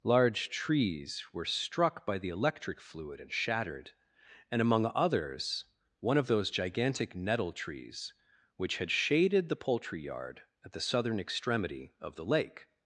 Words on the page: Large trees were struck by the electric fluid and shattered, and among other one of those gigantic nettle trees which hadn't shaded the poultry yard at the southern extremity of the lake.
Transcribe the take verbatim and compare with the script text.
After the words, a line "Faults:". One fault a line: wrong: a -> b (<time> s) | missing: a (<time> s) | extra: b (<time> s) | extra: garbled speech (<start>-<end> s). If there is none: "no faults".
Large trees were struck by the electric fluid and shattered, and among others one of those gigantic nettle trees which had shaded the poultry yard at the southern extremity of the lake.
Faults:
wrong: other -> others (5.0 s)
wrong: hadn't -> had (8.8 s)